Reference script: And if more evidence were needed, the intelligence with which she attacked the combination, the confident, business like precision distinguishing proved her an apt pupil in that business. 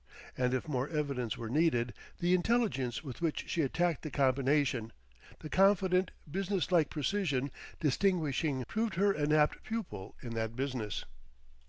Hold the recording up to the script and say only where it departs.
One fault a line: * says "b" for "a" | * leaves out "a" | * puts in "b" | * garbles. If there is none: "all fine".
all fine